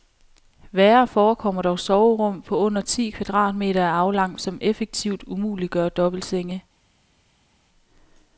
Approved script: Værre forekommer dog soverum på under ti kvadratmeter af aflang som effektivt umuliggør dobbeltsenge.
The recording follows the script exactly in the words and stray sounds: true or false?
true